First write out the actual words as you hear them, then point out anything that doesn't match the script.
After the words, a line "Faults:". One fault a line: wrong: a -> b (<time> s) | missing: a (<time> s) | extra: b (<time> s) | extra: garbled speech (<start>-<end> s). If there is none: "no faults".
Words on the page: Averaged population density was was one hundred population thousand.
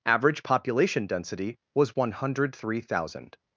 Average population density was one hundred three thousand.
Faults:
wrong: Averaged -> Average (0.1 s)
missing: was (1.9 s)
wrong: population -> three (2.5 s)